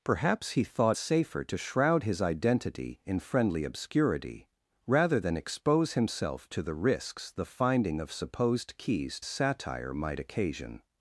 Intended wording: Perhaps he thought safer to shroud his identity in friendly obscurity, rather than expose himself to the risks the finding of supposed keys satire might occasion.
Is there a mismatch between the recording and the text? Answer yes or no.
no